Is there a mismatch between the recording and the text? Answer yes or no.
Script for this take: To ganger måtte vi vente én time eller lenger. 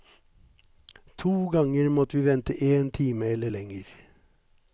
no